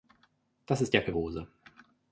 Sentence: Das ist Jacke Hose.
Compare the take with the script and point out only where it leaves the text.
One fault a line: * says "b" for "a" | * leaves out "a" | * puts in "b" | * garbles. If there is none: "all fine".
all fine